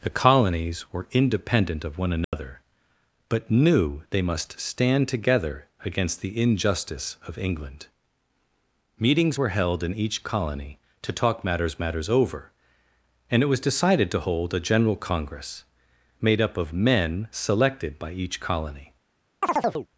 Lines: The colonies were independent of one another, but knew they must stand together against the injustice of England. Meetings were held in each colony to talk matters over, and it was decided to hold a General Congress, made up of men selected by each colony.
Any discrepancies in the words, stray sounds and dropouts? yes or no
yes